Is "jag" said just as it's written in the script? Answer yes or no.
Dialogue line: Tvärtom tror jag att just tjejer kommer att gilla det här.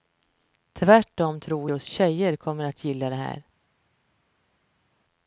no